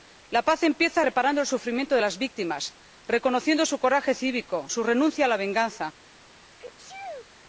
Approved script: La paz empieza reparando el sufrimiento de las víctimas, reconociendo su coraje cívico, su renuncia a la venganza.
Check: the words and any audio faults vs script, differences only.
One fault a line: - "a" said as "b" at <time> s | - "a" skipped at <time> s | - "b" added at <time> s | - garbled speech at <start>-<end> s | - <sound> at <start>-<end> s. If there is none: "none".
- sneeze at 6.6-7.3 s